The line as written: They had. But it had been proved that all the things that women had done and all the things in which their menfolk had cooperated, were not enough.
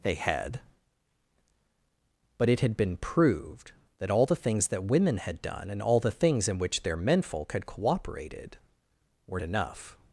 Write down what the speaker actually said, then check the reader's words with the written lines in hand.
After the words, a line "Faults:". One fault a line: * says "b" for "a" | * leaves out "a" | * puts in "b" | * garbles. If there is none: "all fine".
They had. But it had been proved that all the things that women had done and all the things in which their menfolk had cooperated, were enough.
Faults:
* leaves out "not"